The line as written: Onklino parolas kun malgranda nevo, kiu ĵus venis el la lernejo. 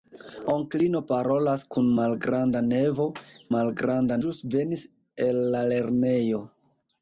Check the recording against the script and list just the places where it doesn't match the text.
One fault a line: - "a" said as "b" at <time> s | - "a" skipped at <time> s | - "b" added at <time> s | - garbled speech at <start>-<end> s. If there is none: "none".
- "kiu" said as "malgranda" at 3.5 s